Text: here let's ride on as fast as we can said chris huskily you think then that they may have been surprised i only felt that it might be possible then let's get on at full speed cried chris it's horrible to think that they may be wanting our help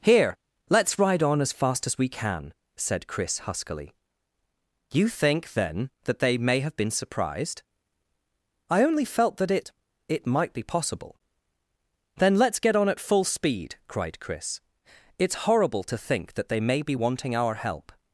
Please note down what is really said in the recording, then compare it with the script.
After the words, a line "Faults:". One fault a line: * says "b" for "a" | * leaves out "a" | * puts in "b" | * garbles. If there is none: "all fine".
here let's ride on as fast as we can said chris huskily you think then that they may have been surprised i only felt that it it might be possible then let's get on at full speed cried chris it's horrible to think that they may be wanting our help
Faults:
* puts in "it"